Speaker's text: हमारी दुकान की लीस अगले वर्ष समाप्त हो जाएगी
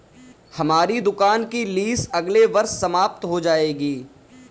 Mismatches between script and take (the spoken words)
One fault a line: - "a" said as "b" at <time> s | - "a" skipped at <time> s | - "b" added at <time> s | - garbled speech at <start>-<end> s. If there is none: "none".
none